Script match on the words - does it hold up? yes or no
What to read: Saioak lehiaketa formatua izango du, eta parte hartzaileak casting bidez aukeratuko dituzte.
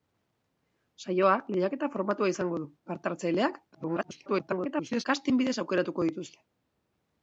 no